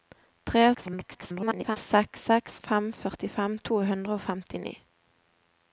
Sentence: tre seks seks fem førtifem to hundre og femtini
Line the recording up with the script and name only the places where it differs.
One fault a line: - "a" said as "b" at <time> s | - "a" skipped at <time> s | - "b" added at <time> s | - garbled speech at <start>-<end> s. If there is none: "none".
- garbled speech at 0.7-1.8 s